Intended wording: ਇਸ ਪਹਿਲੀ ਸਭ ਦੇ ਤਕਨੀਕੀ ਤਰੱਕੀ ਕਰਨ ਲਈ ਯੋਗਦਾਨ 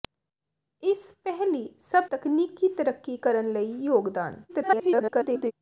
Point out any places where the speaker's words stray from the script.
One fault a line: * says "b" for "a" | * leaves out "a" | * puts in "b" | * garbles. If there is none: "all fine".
* leaves out "ਦੇ"
* garbles